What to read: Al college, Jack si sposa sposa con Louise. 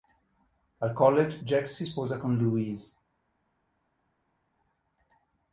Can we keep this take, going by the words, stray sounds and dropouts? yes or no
no